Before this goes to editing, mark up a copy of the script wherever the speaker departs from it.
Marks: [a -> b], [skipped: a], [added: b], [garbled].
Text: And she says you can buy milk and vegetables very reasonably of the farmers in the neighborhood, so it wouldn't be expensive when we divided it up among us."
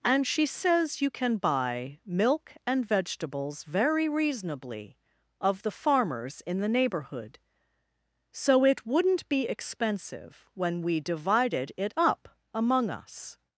And she says you can buy milk and vegetables very reasonably of the farmers in the neighborhood, so it wouldn't be expensive when we divided it up among us."